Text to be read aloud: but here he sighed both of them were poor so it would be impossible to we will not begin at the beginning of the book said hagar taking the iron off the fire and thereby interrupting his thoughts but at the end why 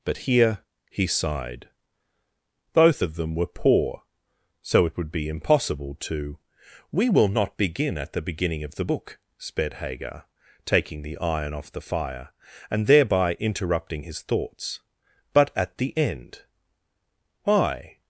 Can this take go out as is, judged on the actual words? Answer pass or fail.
fail